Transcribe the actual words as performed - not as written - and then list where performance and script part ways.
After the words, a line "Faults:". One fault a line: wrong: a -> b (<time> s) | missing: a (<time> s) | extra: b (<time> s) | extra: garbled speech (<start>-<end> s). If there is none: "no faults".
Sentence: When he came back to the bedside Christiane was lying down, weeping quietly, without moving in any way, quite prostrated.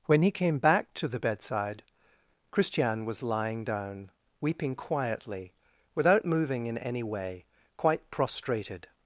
When he came back to the bedside Christiane was lying down, weeping quietly, without moving in any way, quite prostrated.
Faults:
no faults